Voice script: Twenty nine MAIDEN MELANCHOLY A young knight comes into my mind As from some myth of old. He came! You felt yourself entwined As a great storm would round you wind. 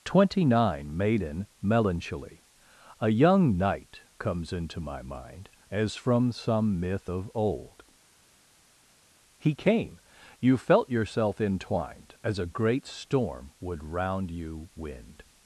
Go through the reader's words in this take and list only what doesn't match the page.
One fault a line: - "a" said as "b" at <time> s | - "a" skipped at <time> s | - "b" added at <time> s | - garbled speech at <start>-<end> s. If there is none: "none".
none